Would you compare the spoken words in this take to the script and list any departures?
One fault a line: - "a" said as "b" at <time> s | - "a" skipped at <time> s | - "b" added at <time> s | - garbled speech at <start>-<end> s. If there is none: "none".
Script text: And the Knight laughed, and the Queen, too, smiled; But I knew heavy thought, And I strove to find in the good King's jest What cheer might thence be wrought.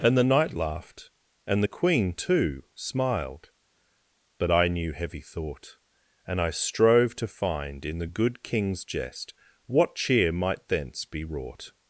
none